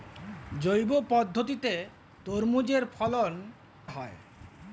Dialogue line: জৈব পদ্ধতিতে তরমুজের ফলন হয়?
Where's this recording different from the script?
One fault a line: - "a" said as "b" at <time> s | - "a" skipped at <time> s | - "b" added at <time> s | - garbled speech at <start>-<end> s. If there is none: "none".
none